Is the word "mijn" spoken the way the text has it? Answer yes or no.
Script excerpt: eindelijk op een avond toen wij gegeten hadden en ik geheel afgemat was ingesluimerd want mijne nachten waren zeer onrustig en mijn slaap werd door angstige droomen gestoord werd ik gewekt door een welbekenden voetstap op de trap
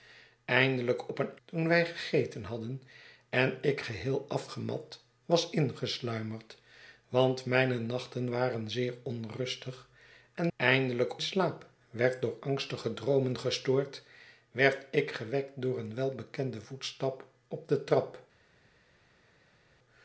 no